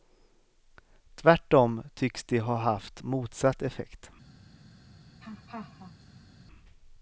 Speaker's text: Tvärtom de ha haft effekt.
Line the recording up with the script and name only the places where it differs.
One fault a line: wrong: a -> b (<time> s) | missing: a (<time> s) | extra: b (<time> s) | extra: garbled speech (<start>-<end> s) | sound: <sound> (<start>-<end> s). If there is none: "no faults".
extra: tycks (1.9 s)
extra: motsatt (3.0 s)
sound: laugh (5.2-6.4 s)